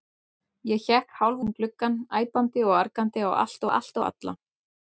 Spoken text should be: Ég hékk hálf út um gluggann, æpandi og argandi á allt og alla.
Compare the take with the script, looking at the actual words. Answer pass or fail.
fail